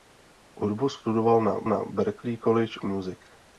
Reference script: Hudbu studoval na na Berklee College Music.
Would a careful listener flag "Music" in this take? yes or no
no